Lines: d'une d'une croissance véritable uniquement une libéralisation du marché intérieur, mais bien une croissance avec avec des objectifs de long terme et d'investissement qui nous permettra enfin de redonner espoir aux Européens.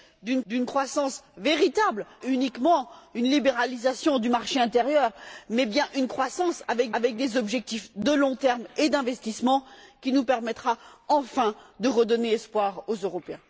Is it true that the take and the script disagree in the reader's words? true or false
false